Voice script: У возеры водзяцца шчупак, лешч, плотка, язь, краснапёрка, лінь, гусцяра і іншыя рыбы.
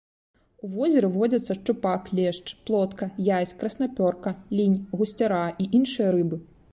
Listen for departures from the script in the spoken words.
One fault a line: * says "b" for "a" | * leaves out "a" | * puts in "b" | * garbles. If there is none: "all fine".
all fine